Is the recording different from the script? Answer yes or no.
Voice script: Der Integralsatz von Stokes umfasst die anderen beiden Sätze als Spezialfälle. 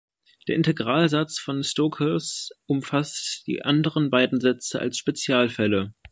no